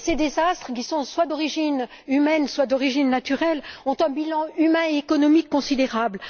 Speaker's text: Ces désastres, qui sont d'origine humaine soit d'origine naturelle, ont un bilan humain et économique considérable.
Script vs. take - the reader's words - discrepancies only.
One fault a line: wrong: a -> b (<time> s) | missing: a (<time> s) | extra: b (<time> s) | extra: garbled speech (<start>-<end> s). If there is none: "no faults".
extra: soit (1.0 s)